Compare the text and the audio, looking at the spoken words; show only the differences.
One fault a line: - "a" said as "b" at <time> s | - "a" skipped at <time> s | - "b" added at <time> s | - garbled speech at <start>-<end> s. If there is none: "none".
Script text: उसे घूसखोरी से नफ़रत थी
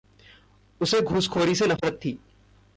none